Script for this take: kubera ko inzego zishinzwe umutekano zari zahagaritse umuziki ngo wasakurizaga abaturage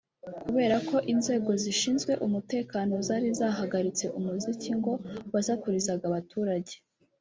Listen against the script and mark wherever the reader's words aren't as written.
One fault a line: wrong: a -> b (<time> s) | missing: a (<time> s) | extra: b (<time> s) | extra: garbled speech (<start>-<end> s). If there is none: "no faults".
no faults